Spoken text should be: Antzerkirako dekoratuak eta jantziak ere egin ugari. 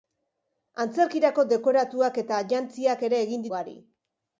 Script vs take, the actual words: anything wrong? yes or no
no